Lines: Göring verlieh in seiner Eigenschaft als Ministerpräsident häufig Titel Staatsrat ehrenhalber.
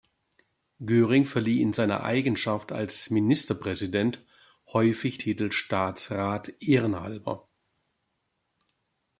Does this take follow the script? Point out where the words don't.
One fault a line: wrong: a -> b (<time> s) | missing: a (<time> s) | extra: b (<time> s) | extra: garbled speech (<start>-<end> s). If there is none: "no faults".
no faults